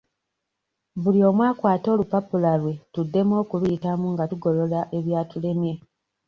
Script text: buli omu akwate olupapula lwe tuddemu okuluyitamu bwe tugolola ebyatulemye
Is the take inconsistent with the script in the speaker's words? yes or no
yes